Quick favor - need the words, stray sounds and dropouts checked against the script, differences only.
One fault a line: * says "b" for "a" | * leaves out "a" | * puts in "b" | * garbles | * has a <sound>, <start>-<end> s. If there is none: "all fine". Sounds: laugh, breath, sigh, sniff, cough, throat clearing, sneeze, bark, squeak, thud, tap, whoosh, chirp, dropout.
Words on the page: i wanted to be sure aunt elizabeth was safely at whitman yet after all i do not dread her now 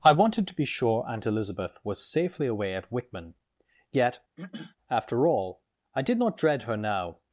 * puts in "away"
* has a throat clearing, 4.4-4.8 s
* says "did" for "do"